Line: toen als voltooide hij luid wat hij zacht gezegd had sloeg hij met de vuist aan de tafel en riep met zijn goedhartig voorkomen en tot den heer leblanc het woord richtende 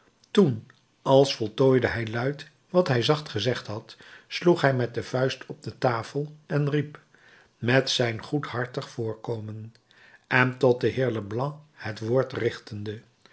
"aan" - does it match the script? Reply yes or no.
no